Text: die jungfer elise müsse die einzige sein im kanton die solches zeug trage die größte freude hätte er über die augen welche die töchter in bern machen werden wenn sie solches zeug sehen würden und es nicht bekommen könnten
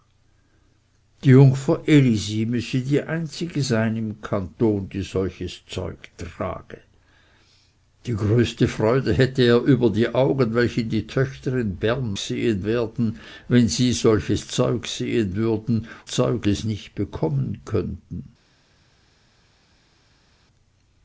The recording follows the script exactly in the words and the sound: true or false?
false